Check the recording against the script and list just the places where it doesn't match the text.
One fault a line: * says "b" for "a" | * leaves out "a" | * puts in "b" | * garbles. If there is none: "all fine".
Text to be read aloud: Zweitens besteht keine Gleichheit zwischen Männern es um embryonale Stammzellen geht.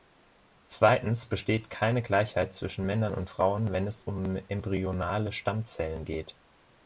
* puts in "und Frauen wenn"